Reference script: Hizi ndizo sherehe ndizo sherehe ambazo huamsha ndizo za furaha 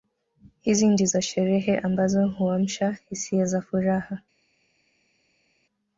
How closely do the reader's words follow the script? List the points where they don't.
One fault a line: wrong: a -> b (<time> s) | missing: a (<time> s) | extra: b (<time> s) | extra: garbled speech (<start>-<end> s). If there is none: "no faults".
missing: ndizo sherehe (1.8 s)
wrong: ndizo -> hisia (3.1 s)